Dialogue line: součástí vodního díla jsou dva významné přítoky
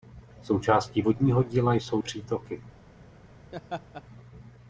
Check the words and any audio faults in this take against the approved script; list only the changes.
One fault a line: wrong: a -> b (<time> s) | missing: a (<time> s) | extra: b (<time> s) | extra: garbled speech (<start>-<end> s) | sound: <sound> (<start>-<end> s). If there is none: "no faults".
missing: dva významné (2.0 s)
sound: laugh (3.5-4.0 s)